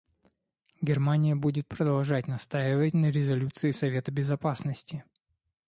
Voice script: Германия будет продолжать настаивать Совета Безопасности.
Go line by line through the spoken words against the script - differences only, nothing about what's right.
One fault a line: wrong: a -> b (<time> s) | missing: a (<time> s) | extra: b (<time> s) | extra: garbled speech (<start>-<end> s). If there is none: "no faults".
extra: на резолюции (2.9 s)